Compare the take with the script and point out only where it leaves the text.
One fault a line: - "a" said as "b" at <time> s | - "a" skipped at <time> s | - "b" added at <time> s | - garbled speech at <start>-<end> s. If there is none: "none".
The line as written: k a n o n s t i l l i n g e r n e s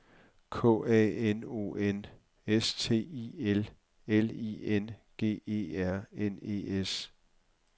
none